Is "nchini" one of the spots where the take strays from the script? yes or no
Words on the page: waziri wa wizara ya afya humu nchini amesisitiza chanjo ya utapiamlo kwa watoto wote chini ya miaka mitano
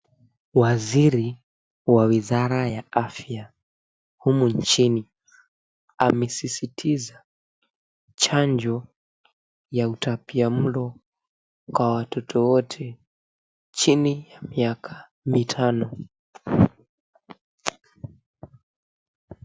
no